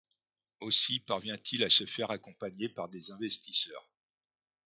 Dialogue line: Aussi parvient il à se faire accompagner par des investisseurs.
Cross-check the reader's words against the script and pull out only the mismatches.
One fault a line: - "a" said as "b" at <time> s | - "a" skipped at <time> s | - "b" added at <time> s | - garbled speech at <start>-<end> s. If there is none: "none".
none